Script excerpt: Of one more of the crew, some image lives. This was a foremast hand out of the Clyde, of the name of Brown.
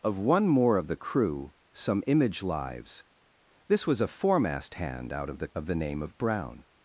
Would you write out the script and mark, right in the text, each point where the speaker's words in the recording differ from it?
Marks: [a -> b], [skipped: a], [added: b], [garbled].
Of one more of the crew, some image lives. This was a foremast hand out of the [skipped: Clyde,] of the name of Brown.